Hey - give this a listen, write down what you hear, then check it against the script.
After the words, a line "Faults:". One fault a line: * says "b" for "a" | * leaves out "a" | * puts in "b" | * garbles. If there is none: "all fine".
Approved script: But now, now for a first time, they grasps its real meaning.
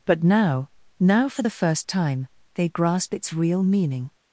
But now, now for the first time, they grasp its real meaning.
Faults:
* says "the" for "a"
* says "grasp" for "grasps"